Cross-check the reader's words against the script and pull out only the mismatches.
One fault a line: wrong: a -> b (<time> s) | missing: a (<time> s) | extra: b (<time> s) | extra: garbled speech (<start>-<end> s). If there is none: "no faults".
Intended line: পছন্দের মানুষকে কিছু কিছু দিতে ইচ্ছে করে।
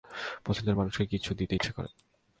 missing: কিছু (1.3 s)